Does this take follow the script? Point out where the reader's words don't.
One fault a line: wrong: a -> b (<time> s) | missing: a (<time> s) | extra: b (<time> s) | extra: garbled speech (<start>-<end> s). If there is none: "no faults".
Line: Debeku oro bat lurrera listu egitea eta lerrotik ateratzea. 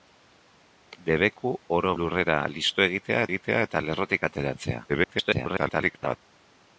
missing: bat (1.9 s)
extra: egitea (3.3 s)
extra: garbled speech (4.9-6.2 s)